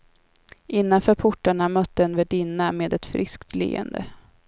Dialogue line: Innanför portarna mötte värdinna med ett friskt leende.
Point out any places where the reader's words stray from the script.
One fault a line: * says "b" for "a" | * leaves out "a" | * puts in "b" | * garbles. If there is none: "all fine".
* puts in "en"